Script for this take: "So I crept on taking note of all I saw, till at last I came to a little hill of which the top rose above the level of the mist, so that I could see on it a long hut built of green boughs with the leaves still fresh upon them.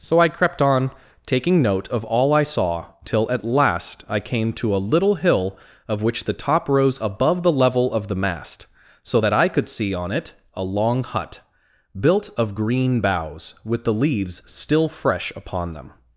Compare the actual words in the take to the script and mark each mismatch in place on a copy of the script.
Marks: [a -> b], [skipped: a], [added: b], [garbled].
"So I crept on taking note of all I saw, till at last I came to a little hill of which the top rose above the level of the [mist, -> mast] so that I could see on it a long hut built of green boughs with the leaves still fresh upon them.